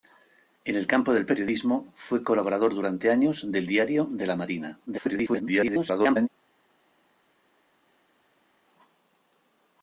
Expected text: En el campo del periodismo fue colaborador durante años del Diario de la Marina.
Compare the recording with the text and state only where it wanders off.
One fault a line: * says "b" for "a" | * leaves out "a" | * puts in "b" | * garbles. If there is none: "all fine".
* garbles